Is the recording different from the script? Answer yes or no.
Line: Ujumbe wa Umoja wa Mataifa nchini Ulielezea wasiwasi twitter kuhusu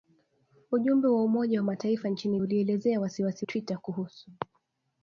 no